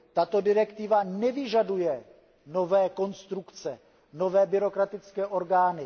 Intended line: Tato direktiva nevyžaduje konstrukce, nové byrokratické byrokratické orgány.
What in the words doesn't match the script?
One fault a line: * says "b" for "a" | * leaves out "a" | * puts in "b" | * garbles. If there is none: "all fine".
* puts in "nové"
* leaves out "byrokratické"